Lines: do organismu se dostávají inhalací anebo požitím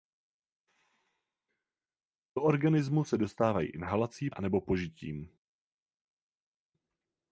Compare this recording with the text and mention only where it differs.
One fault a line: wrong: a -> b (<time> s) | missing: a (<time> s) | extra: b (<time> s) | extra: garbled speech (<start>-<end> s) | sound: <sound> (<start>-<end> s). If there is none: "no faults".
no faults